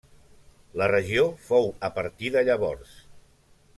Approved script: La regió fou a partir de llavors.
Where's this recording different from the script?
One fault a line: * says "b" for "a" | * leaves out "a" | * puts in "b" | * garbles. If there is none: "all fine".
all fine